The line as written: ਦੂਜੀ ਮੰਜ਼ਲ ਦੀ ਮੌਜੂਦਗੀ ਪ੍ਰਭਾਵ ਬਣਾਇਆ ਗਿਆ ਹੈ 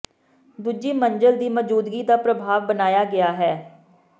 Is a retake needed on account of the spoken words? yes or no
yes